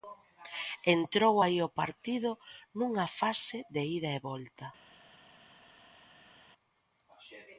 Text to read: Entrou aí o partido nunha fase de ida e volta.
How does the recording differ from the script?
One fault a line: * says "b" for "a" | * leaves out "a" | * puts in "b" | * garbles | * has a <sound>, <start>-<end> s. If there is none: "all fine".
all fine